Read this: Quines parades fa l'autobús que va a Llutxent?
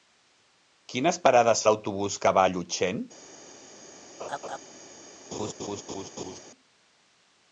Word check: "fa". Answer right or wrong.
wrong